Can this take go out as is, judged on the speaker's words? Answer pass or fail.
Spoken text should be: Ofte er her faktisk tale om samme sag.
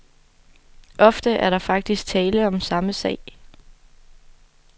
fail